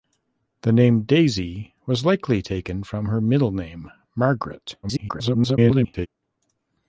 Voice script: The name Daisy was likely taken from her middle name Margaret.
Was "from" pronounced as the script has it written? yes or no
yes